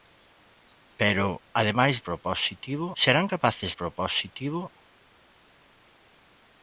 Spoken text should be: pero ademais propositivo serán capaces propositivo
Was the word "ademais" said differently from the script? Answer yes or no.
no